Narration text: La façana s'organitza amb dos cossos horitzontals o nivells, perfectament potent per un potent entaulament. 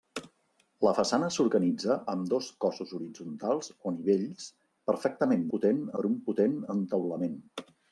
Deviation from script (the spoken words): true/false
false